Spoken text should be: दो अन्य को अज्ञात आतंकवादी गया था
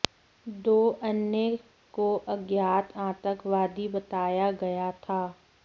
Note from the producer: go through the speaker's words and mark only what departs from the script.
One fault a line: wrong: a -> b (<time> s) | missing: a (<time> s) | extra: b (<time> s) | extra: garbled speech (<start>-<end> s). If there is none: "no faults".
extra: बताया (3.9 s)